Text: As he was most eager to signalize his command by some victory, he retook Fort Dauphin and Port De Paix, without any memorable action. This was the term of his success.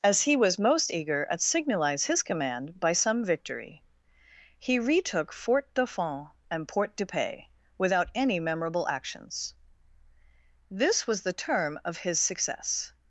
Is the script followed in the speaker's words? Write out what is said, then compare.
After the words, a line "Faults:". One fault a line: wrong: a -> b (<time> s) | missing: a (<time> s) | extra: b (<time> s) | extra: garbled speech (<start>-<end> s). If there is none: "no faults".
As he was most eager at signalize his command by some victory, he retook Fort Dauphin and Port De Paix, without any memorable actions. This was the term of his success.
Faults:
wrong: to -> at (1.3 s)
wrong: action -> actions (8.9 s)